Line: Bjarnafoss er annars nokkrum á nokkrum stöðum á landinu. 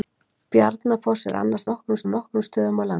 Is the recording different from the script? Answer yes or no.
no